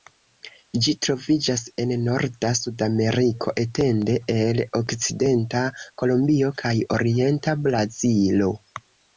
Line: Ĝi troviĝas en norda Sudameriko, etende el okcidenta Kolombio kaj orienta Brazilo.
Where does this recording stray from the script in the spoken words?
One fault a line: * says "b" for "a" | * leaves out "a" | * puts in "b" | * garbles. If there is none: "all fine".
all fine